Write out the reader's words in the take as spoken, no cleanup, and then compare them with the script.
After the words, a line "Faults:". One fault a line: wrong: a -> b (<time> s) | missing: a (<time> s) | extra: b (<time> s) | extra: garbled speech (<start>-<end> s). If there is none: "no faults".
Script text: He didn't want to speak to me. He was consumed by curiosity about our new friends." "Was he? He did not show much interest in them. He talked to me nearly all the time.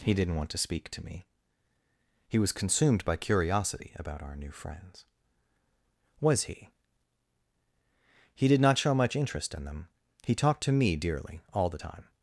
He didn't want to speak to me. He was consumed by curiosity about our new friends." "Was he? He did not show much interest in them. He talked to me dearly all the time.
Faults:
wrong: nearly -> dearly (10.9 s)